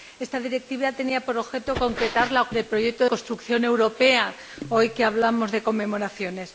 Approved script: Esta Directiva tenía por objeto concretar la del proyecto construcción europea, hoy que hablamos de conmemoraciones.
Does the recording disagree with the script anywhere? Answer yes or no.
no